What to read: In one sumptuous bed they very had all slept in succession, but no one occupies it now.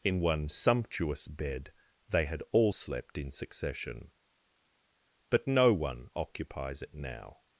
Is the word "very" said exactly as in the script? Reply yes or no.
no